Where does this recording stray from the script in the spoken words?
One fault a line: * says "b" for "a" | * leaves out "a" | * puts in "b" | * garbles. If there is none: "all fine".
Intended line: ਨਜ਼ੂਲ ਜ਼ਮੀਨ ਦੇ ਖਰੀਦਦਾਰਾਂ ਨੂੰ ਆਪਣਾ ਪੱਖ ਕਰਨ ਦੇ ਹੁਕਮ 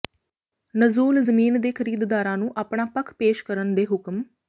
* puts in "ਪੇਸ਼"